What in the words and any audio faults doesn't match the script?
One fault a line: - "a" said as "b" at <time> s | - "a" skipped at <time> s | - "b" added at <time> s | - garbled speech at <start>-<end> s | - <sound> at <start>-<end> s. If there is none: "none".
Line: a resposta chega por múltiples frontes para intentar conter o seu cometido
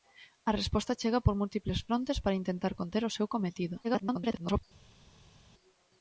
- garbled speech at 3.8-4.6 s